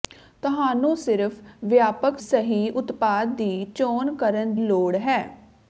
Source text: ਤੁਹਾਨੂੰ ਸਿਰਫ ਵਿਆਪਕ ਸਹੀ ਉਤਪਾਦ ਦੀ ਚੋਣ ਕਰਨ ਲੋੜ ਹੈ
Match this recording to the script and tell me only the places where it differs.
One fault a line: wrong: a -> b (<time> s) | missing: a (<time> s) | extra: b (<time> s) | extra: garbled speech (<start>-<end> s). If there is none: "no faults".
no faults